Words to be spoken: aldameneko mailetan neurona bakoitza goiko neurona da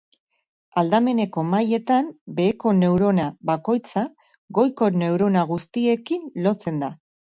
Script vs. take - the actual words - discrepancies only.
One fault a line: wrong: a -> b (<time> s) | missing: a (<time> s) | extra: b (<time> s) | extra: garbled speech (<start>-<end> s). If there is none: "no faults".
extra: beheko (2.4 s)
extra: guztiekin lotzen (5.5 s)